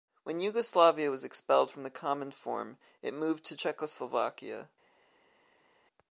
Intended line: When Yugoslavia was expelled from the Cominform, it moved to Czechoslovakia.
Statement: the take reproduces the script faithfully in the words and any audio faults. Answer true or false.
true